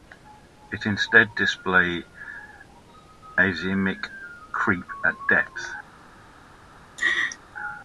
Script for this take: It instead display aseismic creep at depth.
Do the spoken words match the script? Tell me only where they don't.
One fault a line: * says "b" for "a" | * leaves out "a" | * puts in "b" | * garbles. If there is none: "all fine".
all fine